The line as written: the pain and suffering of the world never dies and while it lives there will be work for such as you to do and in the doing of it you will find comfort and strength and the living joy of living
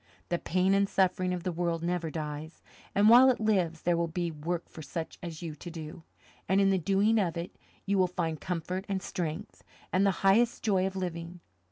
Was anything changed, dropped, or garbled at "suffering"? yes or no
no